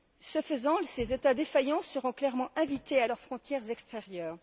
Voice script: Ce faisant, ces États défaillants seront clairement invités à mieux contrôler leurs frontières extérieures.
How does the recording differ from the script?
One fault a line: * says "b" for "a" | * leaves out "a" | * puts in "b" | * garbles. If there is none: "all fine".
* leaves out "mieux contrôler"